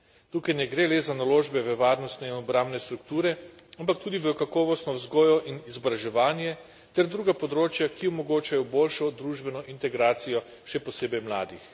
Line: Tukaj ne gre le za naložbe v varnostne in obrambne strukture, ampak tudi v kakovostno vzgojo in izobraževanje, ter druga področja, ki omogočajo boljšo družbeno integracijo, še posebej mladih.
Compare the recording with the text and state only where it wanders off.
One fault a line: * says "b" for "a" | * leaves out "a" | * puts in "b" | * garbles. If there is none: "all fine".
all fine